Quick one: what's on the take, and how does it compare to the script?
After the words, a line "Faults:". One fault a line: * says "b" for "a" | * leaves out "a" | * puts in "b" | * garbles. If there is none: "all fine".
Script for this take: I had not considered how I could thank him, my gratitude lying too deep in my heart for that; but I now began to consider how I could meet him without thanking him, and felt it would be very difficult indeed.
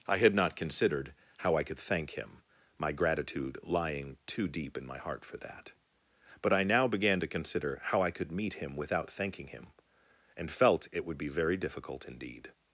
I had not considered how I could thank him, my gratitude lying too deep in my heart for that; but I now began to consider how I could meet him without thanking him, and felt it would be very difficult indeed.
Faults:
all fine